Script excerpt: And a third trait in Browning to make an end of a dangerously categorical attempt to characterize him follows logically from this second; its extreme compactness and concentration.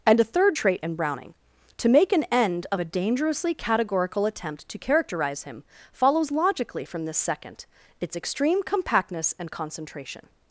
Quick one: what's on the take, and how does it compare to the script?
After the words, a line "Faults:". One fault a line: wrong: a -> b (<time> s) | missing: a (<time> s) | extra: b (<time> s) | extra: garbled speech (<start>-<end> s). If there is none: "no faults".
And a third trait in Browning to make an end of a dangerously categorical attempt to characterize him follows logically from this second; its extreme compactness and concentration.
Faults:
no faults